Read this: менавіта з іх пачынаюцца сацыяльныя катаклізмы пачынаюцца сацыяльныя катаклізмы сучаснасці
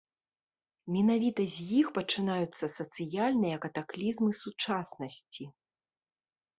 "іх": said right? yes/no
yes